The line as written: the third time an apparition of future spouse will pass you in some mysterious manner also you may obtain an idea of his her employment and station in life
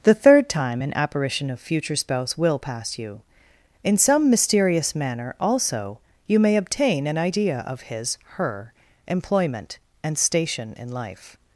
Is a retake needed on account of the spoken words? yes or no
no